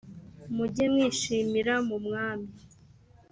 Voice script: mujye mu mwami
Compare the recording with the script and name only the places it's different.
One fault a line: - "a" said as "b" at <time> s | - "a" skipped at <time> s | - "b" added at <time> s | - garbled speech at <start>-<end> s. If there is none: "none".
- "mwishimira" added at 0.9 s